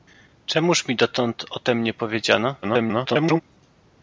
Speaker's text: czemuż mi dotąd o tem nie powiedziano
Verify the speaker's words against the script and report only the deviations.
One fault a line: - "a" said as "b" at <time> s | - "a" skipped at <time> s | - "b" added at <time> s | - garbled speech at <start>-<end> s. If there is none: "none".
- garbled speech at 2.6-3.4 s